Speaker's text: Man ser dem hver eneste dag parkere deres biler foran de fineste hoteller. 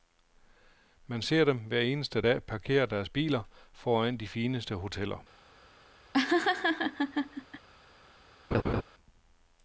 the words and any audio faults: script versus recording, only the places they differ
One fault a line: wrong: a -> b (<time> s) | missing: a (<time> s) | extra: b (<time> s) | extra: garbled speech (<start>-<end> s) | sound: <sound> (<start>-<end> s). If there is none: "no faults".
sound: laugh (6.1-7.7 s)
sound: laugh (8.5-8.8 s)